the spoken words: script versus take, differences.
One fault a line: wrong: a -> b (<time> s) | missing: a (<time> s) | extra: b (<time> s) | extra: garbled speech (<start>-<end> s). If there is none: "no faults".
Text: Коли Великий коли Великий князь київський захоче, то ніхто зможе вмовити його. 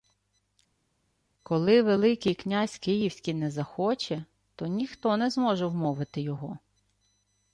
missing: коли Великий (2.3 s)
extra: не (3.3 s)
extra: не (5.2 s)